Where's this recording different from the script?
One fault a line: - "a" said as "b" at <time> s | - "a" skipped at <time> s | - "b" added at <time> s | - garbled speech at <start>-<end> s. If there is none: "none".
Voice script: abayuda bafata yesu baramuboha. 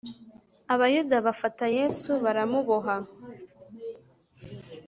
none